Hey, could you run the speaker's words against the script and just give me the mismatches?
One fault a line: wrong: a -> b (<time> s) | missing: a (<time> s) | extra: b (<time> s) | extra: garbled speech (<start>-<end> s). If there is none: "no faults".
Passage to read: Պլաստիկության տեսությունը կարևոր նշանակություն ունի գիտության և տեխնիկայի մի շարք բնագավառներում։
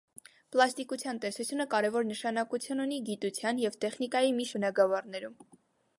missing: շարք (4.5 s)